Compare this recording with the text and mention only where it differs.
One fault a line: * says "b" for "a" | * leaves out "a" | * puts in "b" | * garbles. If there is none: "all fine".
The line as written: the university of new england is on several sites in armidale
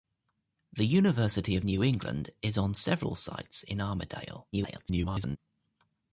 * garbles